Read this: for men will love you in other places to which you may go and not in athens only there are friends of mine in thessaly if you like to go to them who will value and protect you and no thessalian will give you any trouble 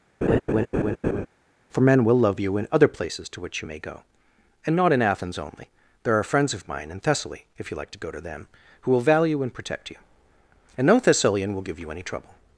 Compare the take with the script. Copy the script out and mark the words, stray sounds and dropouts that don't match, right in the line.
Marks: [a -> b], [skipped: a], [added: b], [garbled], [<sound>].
[laugh] for men will love you in other places to which you may go and not in athens only there are friends of mine in thessaly if you like to go to them who will value and protect you and no thessalian will give you any trouble